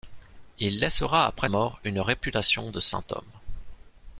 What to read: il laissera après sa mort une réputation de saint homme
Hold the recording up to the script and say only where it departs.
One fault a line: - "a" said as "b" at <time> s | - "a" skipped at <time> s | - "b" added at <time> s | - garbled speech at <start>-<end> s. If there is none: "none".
- "sa" skipped at 1.5 s